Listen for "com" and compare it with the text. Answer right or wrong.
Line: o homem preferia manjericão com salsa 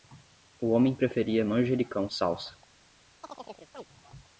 wrong